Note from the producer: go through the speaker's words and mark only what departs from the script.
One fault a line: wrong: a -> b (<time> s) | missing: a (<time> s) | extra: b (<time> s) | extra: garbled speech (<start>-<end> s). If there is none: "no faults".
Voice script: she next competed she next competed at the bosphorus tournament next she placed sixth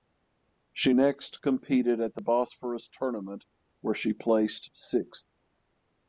missing: she next competed (2.0 s)
wrong: next -> where (3.8 s)